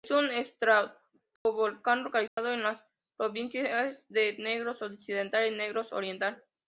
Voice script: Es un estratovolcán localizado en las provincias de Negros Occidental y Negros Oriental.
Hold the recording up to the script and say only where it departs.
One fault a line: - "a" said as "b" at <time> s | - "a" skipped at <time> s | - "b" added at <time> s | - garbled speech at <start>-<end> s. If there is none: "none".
none